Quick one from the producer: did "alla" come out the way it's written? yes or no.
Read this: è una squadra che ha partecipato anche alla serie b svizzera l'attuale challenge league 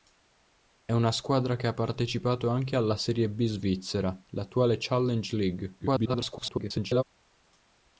yes